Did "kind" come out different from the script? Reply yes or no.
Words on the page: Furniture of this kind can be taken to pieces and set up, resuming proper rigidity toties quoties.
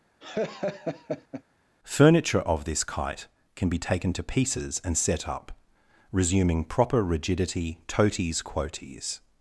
yes